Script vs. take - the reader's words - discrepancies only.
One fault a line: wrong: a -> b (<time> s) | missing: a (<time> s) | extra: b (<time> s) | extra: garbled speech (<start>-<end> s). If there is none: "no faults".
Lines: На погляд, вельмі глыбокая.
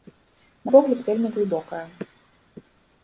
no faults